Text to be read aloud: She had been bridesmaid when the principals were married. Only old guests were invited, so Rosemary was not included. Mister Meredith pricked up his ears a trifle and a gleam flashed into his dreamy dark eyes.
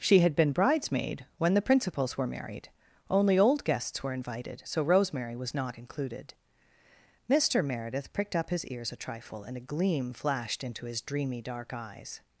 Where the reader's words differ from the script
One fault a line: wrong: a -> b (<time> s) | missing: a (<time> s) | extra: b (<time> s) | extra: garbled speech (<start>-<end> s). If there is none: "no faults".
no faults